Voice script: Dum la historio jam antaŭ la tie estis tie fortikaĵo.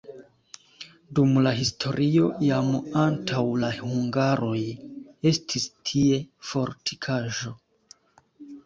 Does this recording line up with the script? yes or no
no